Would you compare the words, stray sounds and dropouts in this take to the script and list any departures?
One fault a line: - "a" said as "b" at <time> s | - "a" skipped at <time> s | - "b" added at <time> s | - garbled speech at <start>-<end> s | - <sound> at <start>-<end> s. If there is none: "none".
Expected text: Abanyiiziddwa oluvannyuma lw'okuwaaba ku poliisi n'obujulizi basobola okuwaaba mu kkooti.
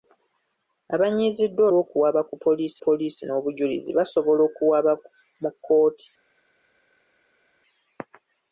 - "oluvannyuma" skipped at 1.6 s
- "poliisi" added at 2.8 s